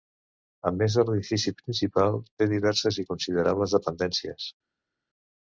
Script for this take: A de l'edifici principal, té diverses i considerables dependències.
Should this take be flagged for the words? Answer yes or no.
yes